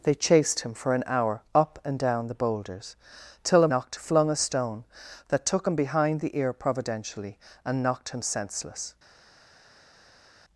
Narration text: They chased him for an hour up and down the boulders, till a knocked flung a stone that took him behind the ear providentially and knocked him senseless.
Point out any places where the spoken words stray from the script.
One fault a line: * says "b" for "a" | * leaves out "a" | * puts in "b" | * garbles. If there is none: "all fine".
all fine